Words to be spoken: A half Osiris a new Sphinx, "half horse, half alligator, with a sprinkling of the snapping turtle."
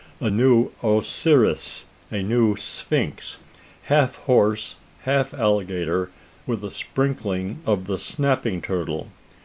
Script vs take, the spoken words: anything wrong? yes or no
yes